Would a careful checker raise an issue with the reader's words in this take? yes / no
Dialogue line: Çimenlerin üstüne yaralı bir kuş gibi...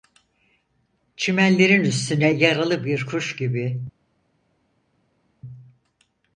no